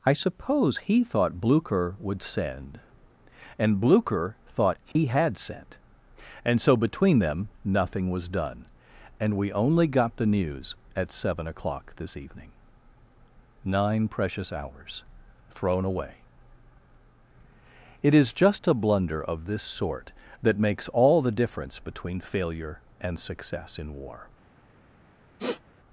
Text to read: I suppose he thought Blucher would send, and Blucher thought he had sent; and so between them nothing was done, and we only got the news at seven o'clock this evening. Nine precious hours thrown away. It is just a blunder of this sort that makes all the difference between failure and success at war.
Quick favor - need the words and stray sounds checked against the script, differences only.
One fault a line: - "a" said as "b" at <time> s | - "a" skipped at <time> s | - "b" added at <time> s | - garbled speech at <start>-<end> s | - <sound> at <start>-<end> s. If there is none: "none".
- dropout at 4.9-5.0 s
- "at" said as "in" at 23.8 s
- sniff at 25.4-25.6 s